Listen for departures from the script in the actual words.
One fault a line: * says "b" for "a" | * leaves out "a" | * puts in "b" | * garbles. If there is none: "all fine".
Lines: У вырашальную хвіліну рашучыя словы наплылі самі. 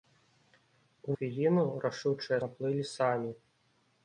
* leaves out "вырашальную"
* leaves out "словы"